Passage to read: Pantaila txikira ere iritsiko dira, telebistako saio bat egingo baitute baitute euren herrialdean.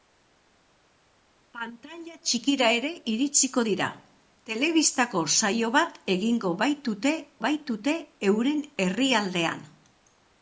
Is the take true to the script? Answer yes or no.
yes